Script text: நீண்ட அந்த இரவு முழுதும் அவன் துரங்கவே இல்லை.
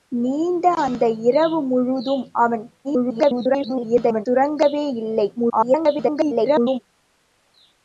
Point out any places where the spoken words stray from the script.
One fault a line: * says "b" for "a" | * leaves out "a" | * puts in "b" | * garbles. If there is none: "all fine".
* garbles
* garbles